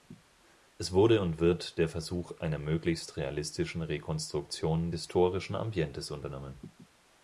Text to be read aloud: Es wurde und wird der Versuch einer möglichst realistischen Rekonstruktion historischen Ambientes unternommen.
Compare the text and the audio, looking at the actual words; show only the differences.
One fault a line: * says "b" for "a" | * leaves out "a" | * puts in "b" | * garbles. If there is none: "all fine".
all fine